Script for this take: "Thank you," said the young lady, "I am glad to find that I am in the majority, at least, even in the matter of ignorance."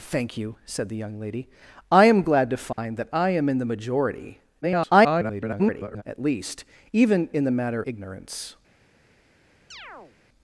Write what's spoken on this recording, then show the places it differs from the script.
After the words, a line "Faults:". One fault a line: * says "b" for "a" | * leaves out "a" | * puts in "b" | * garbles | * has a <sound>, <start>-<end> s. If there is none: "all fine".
"Thank you," said the young lady, "I am glad to find that I am in the majority, [garbled] at least, even in the matter ignorance."
Faults:
* has a dropout, 2.7-2.8 s
* garbles
* leaves out "of"
* has a chirp, 9.7-10.2 s